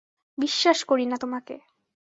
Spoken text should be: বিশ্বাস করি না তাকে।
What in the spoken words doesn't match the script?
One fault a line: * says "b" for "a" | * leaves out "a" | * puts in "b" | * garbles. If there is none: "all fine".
* says "তোমাকে" for "তাকে"